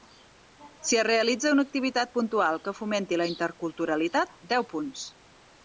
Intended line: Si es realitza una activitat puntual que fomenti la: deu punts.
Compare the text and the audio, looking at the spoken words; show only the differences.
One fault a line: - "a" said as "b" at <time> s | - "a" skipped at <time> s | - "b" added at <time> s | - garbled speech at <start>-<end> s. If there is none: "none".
- "interculturalitat" added at 3.4 s